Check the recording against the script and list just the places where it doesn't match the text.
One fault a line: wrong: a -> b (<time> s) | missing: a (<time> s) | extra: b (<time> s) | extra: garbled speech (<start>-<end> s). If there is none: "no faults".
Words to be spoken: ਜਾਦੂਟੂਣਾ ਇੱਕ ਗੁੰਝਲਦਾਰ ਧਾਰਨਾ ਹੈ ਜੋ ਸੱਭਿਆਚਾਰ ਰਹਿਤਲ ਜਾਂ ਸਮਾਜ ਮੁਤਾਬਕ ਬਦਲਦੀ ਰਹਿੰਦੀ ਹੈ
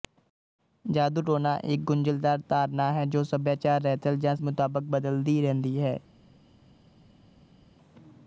missing: ਸਮਾਜ (4.3 s)